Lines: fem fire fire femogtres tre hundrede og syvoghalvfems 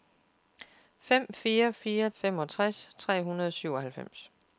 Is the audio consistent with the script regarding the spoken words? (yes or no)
yes